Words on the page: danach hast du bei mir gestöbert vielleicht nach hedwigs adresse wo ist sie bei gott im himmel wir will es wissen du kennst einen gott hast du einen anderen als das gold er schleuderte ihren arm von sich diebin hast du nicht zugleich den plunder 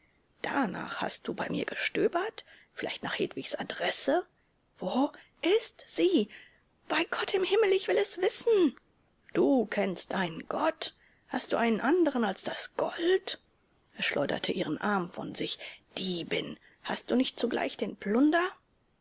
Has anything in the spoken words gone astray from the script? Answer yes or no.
yes